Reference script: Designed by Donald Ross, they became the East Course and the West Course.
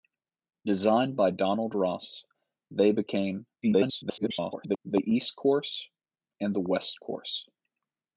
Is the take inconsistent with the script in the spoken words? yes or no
yes